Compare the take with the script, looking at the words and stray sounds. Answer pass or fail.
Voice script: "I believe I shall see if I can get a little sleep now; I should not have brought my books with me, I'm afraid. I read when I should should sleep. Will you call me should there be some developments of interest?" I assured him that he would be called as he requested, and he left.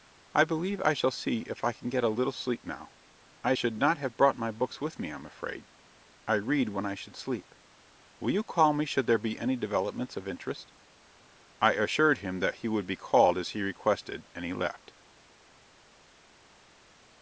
fail